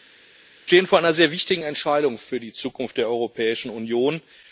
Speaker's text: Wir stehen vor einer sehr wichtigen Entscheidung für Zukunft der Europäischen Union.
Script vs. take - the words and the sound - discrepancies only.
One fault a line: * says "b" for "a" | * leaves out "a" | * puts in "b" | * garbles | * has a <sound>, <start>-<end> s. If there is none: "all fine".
* puts in "die"